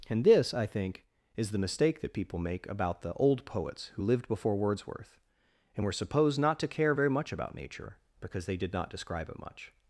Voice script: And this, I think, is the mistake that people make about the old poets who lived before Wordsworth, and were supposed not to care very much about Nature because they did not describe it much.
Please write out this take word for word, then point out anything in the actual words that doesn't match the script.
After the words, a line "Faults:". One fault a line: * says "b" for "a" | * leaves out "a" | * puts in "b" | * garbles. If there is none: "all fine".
And this, I think, is the mistake that people make about the old poets who lived before Wordsworth, and were supposed not to care very much about Nature because they did not describe it much.
Faults:
all fine